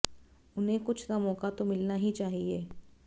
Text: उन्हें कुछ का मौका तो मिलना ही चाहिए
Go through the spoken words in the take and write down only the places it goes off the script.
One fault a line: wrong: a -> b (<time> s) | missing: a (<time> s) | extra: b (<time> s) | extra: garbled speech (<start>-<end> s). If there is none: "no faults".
no faults